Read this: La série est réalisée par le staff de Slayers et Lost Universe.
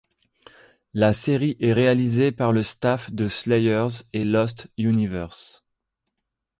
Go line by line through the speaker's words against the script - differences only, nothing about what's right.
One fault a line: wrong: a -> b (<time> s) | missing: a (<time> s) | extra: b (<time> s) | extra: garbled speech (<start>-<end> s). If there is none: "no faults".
no faults